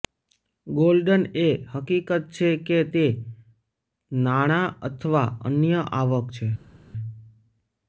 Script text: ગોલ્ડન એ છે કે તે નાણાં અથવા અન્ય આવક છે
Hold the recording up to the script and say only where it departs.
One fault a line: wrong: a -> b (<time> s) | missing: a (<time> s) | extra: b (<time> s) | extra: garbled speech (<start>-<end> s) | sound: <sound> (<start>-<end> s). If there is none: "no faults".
extra: હકીકત (1.7 s)